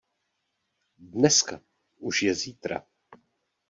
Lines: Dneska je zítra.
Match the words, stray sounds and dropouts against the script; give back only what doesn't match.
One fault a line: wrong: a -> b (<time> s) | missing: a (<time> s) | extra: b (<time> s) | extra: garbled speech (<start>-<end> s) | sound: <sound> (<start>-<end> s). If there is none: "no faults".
extra: už (2.0 s)